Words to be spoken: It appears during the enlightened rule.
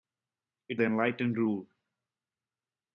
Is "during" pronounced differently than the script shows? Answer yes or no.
yes